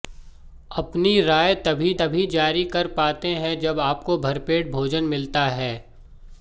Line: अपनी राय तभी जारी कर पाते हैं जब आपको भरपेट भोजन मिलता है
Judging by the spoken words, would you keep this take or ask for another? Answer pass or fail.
fail